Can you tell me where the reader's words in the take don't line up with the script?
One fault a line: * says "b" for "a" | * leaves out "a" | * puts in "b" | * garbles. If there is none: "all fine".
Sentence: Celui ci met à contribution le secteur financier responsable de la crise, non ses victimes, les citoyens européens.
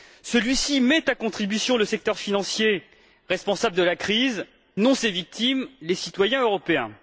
all fine